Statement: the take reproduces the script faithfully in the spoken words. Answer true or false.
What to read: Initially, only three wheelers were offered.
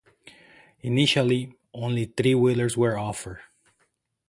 true